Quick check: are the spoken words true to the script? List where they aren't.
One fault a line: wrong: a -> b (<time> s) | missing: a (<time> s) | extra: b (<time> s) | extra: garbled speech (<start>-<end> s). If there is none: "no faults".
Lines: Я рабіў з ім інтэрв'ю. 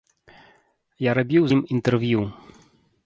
missing: з (1.4 s)